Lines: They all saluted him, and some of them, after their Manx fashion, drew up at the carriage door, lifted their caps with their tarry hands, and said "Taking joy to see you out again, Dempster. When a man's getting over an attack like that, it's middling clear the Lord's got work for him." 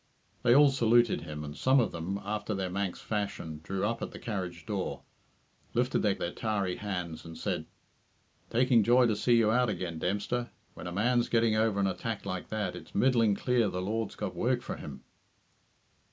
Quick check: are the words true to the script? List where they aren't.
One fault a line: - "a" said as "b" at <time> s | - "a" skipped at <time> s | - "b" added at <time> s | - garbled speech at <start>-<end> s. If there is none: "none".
- "caps with" skipped at 6.2 s